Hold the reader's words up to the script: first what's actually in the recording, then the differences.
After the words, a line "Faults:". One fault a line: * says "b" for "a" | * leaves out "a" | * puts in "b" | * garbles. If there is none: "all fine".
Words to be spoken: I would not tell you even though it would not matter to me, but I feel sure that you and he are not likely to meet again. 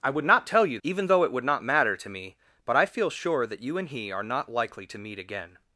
I would not tell you even though it would not matter to me, but I feel sure that you and he are not likely to meet again.
Faults:
all fine